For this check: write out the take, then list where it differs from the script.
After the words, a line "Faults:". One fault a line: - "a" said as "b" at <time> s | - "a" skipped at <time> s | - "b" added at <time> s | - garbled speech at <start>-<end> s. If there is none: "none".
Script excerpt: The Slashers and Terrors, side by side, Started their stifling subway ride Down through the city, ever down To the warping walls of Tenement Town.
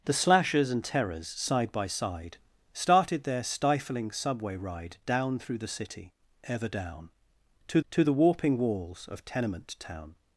The Slashers and Terrors, side by side, Started their stifling subway ride Down through the city, ever down To To the warping walls of Tenement Town.
Faults:
- "To" added at 7.9 s